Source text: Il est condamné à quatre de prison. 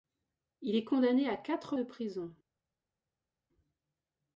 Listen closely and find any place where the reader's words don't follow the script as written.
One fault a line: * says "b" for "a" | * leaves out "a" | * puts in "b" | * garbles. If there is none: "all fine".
all fine